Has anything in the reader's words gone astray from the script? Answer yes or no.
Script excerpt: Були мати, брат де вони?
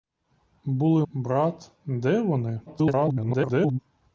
yes